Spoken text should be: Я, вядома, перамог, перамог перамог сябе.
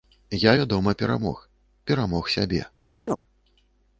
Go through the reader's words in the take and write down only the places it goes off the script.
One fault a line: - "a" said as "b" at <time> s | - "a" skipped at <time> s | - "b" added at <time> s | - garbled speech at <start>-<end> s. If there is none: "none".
- "перамог" skipped at 2.3 s